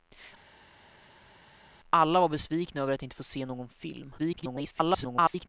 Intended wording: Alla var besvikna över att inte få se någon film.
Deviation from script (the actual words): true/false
true